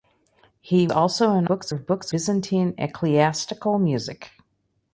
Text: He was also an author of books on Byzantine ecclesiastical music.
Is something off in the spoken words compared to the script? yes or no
yes